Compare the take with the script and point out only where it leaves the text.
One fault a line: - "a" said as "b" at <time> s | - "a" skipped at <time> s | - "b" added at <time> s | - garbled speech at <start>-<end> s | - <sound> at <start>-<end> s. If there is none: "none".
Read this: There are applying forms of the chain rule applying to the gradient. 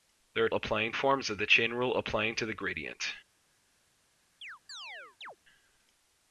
- chirp at 4.4-5.4 s